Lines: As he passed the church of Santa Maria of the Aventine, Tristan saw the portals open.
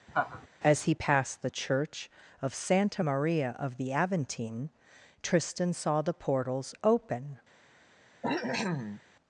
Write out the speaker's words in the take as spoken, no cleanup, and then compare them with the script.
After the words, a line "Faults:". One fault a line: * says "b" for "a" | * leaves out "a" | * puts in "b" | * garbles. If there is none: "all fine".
As he passed the church of Santa Maria of the Aventine, Tristan saw the portals open.
Faults:
all fine